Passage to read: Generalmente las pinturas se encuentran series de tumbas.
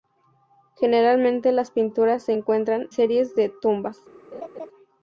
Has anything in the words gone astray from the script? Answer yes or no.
no